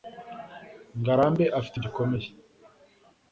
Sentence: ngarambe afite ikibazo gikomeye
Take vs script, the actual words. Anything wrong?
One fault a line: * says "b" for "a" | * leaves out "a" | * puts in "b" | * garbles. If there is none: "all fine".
* leaves out "ikibazo"